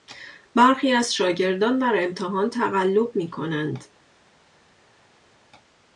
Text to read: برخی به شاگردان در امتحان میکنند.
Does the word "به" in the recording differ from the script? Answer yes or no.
yes